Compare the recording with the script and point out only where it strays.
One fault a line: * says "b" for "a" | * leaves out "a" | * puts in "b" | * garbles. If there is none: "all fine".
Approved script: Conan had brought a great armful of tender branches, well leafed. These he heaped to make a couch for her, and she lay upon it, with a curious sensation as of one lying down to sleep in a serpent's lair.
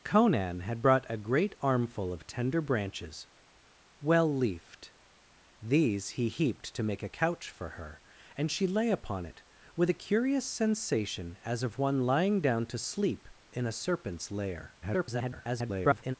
* garbles